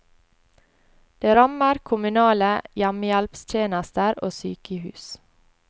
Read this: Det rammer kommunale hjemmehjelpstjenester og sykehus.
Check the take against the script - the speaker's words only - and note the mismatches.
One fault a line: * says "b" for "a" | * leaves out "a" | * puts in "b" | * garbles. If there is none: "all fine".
all fine